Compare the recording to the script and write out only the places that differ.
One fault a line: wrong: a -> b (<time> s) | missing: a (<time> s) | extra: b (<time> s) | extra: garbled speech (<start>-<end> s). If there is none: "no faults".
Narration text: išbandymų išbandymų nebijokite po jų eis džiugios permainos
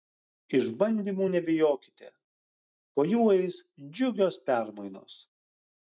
missing: išbandymų (1.3 s)